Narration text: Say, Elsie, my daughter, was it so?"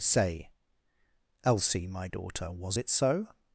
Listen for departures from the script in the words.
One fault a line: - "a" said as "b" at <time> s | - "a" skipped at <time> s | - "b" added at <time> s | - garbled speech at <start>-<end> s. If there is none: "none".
none